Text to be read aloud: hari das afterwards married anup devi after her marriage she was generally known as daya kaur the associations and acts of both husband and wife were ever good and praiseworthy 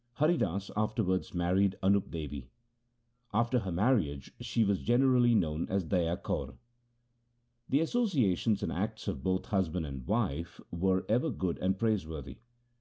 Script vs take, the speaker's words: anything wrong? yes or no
no